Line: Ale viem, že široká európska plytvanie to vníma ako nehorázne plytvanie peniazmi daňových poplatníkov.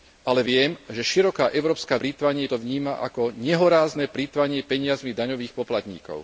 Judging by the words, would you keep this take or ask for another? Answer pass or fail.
pass